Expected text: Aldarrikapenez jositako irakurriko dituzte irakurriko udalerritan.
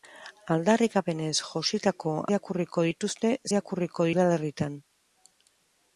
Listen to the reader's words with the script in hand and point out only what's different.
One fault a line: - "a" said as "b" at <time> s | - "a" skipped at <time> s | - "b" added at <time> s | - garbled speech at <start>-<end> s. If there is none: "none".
none